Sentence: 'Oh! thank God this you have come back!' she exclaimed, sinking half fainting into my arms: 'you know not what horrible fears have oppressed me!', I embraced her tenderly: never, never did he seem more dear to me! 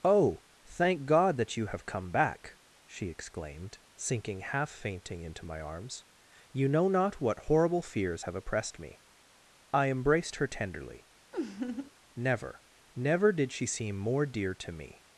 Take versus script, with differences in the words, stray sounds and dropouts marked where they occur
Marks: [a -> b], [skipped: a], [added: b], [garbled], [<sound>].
'Oh! thank God [this -> that] you have come back!' she exclaimed, sinking half fainting into my arms: 'you know not what horrible fears have oppressed me!', I embraced her tenderly: [laugh] never, never did [he -> she] seem more dear to me!